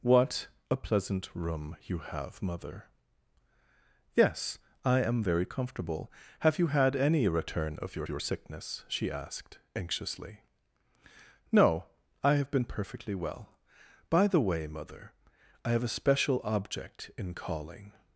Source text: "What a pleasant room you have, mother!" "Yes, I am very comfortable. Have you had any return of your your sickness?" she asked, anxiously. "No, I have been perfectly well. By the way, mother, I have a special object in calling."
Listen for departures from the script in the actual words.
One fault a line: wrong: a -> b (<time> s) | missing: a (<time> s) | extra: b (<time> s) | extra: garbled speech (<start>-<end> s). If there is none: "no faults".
no faults